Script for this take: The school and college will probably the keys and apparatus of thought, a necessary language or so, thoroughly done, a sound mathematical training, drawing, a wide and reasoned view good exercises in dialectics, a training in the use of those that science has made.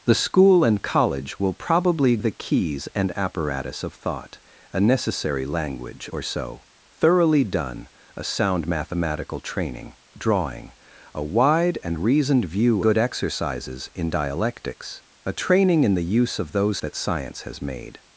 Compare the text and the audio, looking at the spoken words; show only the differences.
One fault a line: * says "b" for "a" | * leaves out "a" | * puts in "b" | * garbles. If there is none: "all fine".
all fine